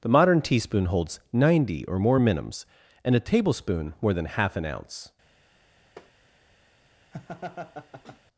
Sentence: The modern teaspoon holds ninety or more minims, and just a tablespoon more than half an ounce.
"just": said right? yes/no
no